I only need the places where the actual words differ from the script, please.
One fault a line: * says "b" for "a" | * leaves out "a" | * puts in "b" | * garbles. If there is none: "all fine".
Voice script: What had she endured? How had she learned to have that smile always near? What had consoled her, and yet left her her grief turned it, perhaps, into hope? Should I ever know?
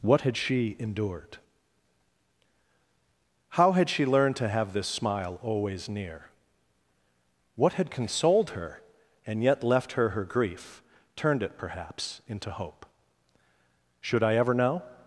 * says "this" for "that"